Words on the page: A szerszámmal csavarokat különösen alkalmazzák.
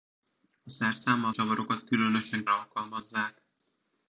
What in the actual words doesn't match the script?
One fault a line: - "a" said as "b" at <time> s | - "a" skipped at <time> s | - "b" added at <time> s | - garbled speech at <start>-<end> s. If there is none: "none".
none